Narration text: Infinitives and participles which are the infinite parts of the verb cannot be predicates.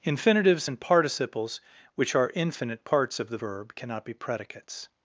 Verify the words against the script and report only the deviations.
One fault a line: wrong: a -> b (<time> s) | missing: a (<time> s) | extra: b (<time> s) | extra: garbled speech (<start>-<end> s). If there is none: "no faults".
missing: the (2.3 s)